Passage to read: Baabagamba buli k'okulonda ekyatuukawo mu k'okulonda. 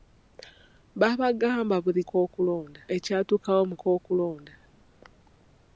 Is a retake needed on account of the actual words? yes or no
no